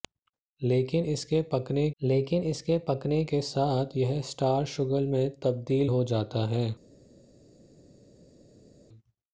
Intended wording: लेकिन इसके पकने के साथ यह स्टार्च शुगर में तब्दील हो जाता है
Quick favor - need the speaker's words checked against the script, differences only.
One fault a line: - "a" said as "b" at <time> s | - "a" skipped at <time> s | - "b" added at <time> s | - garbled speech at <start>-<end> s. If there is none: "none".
- "लेकिन इसके पकने" added at 2.0 s